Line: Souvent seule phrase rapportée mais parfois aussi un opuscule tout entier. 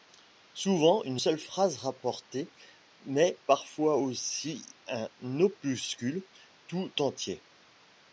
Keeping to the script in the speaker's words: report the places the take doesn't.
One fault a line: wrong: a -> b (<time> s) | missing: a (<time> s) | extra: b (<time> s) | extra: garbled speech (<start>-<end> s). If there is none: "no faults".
extra: une (1.0 s)